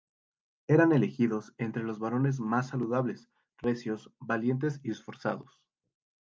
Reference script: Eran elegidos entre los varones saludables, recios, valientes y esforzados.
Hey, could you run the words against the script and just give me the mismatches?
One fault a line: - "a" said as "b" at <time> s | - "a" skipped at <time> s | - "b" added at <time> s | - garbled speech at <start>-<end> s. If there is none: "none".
- "más" added at 2.4 s